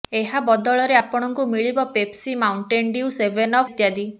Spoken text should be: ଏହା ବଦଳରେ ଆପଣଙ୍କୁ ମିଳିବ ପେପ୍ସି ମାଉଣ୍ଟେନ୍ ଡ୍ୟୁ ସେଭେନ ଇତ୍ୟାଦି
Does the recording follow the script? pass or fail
pass